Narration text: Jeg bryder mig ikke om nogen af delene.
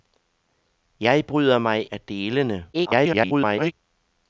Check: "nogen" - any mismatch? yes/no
yes